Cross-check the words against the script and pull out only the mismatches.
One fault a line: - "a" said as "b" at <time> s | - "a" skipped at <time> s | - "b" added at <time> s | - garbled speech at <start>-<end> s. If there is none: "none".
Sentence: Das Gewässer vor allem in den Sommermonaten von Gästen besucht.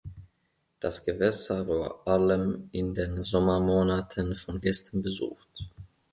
none